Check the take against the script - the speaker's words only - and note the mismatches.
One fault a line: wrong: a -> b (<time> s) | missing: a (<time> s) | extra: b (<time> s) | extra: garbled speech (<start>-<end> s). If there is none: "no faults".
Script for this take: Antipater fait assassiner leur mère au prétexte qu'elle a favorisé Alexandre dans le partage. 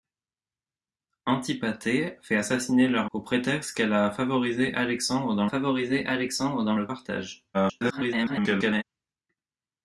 missing: mère (3.1 s)
extra: favorisé Alexandre dans (5.4 s)
extra: garbled speech (7.5-8.8 s)